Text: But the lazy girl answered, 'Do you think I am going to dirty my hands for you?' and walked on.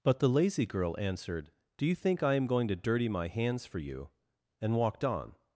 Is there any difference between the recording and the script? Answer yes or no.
no